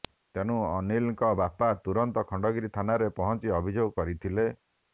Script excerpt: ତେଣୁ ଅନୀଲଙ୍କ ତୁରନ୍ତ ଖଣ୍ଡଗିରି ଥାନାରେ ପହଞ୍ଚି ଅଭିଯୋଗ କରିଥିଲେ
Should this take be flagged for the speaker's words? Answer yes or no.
yes